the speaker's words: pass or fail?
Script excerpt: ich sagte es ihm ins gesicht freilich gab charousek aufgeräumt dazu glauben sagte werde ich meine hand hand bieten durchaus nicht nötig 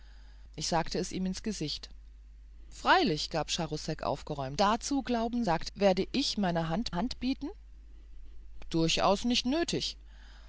pass